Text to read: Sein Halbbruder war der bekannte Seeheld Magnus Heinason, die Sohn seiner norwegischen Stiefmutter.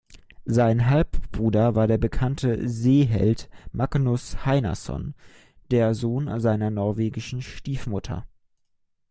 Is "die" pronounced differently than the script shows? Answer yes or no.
yes